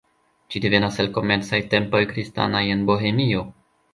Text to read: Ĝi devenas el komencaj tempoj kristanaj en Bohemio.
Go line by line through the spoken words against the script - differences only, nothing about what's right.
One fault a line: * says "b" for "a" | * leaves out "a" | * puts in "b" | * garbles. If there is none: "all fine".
all fine